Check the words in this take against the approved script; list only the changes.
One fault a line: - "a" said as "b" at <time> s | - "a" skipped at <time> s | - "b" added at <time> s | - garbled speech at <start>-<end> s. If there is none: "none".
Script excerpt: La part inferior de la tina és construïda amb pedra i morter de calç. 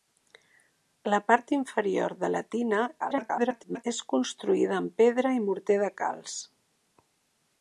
- garbled speech at 3.0-3.8 s